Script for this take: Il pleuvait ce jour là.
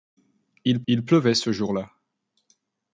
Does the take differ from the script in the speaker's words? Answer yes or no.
yes